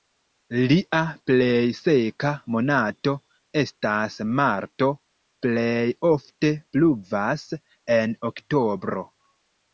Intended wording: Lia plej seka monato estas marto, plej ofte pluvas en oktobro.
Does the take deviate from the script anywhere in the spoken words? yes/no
no